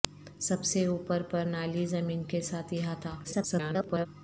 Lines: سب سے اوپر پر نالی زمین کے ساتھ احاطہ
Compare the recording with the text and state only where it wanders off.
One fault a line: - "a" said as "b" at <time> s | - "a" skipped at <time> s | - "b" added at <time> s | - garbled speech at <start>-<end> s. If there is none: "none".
- garbled speech at 3.2-4.1 s